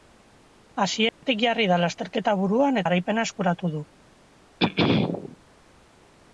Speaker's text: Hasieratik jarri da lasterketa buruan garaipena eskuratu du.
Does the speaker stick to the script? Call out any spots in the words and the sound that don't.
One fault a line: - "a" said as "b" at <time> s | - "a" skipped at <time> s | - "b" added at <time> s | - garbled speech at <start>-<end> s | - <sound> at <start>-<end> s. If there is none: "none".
- dropout at 1.1-1.2 s
- throat clearing at 4.6-5.4 s